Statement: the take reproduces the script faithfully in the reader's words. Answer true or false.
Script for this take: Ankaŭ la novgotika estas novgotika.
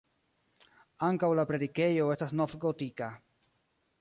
false